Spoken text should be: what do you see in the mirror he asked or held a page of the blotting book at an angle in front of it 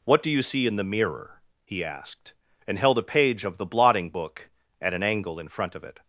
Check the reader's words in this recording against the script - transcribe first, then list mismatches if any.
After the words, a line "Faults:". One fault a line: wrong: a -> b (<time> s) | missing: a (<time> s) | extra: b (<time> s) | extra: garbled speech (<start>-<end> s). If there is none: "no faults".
what do you see in the mirror he asked and held a page of the blotting book at an angle in front of it
Faults:
wrong: or -> and (2.6 s)